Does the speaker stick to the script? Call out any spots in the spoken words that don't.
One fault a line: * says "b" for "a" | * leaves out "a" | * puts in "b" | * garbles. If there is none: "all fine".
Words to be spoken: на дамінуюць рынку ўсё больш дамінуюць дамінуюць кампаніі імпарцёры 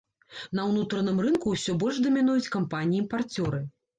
* says "ўнутраным" for "дамінуюць"
* leaves out "дамінуюць"